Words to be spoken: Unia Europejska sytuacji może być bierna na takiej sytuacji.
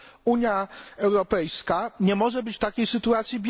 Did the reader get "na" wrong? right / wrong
wrong